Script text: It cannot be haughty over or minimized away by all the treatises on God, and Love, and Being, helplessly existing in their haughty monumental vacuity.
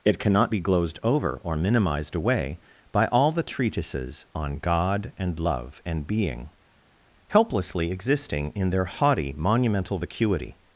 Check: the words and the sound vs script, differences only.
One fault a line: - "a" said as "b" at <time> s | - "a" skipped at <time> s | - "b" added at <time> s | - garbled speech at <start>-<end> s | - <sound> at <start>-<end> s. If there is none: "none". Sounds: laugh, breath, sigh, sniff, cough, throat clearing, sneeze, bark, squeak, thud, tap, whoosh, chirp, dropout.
- "haughty" said as "glozed" at 0.6 s